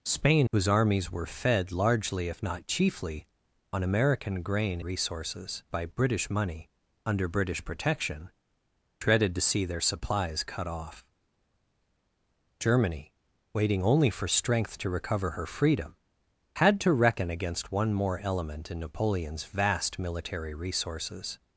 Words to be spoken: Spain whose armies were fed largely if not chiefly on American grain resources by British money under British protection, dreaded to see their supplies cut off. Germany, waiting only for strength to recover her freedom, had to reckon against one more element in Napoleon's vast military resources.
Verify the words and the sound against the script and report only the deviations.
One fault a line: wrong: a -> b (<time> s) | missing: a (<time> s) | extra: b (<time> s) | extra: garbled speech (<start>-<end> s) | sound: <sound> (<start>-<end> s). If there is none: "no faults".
no faults